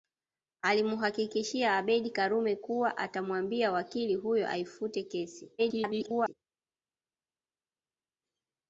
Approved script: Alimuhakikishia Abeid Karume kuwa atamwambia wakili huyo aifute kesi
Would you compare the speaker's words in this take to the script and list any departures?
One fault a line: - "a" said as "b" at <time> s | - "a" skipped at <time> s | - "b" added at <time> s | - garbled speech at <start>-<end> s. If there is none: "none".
- garbled speech at 5.6-6.3 s